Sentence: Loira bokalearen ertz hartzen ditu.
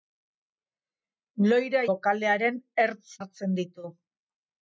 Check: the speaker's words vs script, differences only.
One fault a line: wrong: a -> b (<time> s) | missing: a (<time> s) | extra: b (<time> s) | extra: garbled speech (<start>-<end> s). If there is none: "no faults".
no faults